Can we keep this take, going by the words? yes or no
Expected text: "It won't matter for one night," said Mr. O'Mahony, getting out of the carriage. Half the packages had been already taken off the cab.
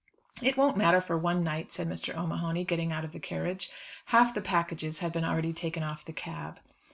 yes